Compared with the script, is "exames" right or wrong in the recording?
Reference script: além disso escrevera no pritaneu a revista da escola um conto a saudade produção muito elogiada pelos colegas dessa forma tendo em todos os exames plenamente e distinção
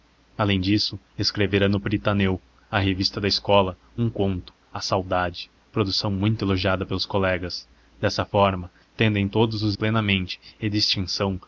wrong